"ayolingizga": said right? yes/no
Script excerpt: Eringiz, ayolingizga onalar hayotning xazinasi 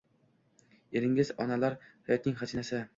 no